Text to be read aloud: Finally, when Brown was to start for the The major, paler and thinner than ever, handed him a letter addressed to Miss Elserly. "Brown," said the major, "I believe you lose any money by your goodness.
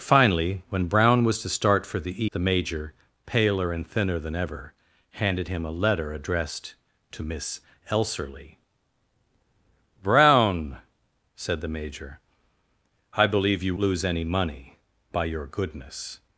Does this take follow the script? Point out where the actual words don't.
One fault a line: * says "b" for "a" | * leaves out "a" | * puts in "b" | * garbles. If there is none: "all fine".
all fine